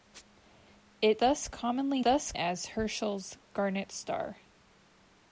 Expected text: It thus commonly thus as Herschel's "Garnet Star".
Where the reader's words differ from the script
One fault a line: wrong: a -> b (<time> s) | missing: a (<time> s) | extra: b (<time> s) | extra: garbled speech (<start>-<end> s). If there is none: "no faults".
no faults